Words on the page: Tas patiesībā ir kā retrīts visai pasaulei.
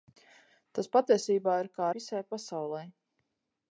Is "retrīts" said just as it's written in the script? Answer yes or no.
no